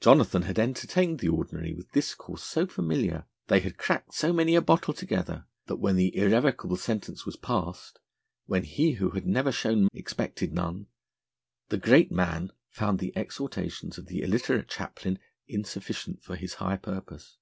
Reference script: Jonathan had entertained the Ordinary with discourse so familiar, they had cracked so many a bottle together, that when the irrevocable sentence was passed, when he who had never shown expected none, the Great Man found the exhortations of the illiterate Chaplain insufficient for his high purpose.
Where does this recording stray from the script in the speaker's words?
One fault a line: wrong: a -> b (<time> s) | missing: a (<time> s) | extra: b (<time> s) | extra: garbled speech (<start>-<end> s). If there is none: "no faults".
no faults